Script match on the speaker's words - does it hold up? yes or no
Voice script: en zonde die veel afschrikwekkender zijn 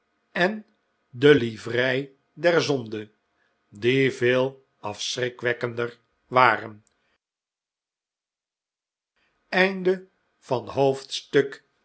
no